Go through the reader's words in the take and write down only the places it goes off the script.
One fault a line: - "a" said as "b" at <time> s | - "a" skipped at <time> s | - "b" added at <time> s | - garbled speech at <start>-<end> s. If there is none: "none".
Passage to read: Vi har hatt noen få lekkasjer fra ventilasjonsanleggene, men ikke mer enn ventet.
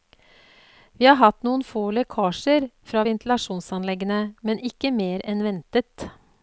none